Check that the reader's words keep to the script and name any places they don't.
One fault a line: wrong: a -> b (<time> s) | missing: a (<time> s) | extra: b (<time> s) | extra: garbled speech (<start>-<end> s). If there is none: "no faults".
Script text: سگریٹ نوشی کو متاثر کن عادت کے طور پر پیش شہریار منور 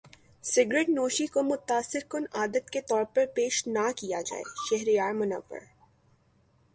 extra: نہ کیا جائے (3.7 s)